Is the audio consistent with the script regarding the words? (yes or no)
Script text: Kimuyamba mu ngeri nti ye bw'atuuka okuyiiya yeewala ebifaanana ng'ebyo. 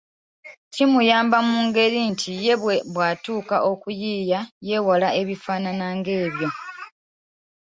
yes